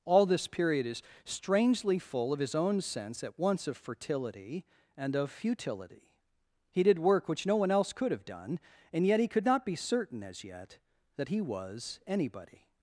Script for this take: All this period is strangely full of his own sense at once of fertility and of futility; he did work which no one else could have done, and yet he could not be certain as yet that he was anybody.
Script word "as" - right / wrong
right